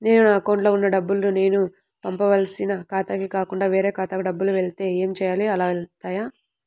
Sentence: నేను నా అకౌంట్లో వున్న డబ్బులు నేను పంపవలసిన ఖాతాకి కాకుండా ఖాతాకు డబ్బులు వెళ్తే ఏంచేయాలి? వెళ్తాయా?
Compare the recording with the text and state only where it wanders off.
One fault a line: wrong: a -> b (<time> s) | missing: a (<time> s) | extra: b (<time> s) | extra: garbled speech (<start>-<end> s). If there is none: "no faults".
extra: వేరే (3.7 s)
extra: అలా (5.5 s)